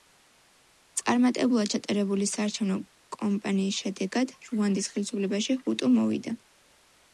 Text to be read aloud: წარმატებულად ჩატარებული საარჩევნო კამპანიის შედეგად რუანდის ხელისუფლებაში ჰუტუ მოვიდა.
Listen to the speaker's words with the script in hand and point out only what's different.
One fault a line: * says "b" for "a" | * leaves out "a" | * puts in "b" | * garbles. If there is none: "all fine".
all fine